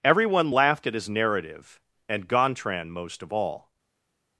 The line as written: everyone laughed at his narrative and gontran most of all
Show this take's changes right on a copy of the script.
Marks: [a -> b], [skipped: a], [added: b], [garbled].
everyone laughed at his narrative and gontran most of all